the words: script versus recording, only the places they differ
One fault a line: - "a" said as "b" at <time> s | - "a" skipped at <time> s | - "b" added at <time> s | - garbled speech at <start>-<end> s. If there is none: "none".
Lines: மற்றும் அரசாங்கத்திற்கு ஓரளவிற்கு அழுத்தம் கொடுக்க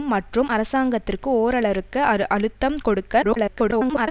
- garbled speech at 3.2-4.1 s